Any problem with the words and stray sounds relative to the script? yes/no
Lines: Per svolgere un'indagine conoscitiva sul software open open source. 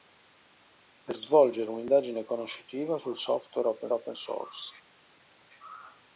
no